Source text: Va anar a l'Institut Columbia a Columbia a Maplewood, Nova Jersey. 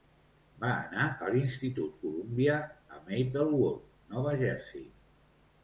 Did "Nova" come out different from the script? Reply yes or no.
no